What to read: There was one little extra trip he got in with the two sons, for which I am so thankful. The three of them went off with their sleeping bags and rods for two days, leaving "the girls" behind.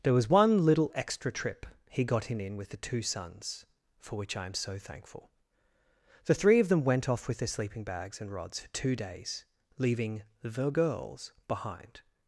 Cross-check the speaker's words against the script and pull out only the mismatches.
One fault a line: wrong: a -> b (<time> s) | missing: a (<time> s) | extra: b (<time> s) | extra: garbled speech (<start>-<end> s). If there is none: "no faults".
extra: in (2.4 s)